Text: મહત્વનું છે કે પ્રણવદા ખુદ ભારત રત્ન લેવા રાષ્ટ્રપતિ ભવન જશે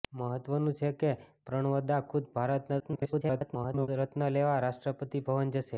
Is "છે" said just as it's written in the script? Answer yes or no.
yes